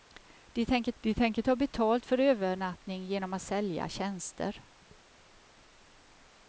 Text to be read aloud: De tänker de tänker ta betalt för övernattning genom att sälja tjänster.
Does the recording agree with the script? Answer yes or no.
yes